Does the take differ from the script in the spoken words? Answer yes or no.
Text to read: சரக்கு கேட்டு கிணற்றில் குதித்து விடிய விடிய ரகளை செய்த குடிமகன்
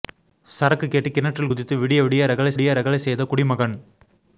yes